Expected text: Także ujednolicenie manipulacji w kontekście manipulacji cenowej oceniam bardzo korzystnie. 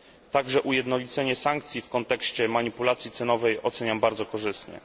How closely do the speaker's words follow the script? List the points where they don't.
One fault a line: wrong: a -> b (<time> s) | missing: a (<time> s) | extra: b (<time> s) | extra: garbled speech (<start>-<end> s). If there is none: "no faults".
wrong: manipulacji -> sankcji (1.4 s)